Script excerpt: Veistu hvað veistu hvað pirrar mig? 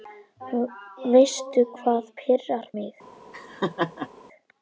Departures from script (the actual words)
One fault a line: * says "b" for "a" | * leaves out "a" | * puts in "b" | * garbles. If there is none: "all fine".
* leaves out "veistu hvað"